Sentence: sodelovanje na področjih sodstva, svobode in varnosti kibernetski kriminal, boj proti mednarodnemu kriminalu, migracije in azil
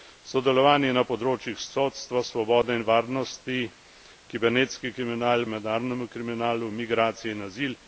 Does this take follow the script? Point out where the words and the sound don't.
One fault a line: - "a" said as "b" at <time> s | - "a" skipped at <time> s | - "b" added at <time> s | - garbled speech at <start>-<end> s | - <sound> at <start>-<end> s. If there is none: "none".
- "boj proti" skipped at 5.5 s